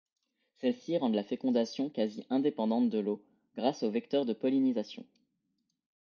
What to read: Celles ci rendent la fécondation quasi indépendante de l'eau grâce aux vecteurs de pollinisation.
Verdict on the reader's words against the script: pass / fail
pass